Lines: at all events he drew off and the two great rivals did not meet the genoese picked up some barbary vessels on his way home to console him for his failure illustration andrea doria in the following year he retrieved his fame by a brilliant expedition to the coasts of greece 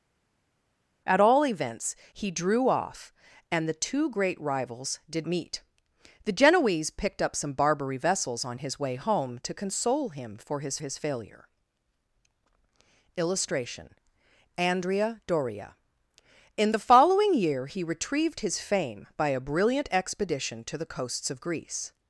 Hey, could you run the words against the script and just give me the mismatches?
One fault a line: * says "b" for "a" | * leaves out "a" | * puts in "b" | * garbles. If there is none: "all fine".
* leaves out "not"
* puts in "his"